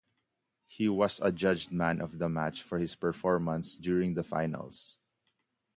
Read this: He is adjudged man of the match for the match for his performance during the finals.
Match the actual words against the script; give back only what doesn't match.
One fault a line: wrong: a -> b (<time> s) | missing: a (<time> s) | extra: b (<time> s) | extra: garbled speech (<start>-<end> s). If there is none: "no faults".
wrong: is -> was (0.9 s)
missing: the match for (2.8 s)